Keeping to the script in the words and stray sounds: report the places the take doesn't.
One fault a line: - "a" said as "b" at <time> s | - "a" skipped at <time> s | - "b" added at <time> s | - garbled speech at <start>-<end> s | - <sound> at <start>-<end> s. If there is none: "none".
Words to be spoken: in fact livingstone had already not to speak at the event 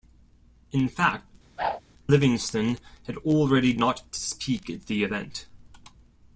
- whoosh at 1.6-1.8 s